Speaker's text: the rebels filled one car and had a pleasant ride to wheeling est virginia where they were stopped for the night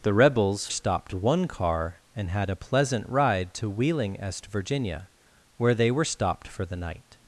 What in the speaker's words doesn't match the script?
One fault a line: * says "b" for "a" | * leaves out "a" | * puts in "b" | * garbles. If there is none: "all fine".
* says "stopped" for "filled"